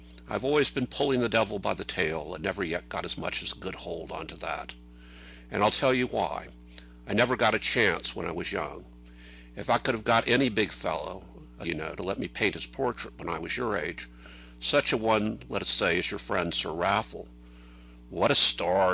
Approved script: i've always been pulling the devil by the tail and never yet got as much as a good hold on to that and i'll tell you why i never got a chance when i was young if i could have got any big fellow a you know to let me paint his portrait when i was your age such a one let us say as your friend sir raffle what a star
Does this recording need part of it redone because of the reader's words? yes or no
no